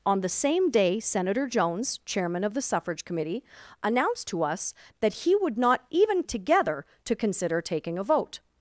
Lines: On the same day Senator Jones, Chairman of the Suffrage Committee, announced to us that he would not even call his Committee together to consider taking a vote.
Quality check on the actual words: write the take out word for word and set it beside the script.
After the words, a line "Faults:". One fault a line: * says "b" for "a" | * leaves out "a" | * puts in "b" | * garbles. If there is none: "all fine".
On the same day Senator Jones, Chairman of the Suffrage Committee, announced to us that he would not even together to consider taking a vote.
Faults:
* leaves out "call his Committee"